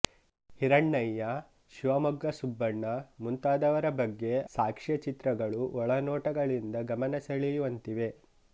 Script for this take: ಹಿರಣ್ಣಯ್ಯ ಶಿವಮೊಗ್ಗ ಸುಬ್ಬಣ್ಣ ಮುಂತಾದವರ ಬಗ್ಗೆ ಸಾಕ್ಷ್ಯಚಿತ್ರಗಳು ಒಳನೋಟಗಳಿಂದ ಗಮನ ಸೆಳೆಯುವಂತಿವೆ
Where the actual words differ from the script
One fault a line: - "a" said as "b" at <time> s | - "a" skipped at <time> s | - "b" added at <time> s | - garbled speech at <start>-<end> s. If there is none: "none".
none